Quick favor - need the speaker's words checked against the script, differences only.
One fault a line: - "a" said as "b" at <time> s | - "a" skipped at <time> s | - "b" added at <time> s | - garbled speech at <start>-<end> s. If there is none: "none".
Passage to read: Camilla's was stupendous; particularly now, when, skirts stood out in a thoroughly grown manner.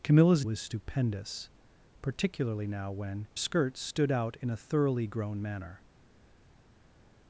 none